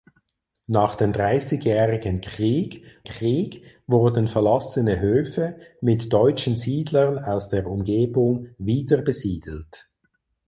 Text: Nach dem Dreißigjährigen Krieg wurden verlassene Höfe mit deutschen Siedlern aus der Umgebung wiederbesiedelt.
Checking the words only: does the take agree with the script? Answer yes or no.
no